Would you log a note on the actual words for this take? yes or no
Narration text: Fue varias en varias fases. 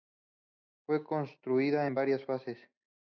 yes